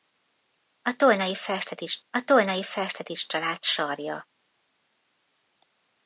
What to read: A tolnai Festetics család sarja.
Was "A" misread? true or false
false